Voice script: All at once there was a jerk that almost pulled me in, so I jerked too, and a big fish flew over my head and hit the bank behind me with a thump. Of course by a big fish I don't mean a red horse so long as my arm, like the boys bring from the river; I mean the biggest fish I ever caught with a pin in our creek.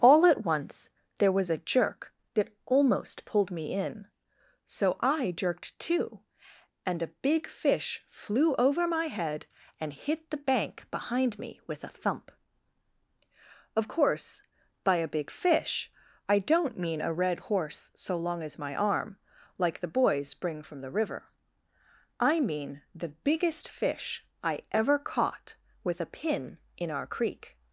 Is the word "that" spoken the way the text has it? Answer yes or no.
yes